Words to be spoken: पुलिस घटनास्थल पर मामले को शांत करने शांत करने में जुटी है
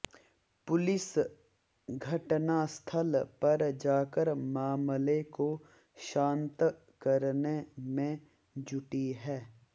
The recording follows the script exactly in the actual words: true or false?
false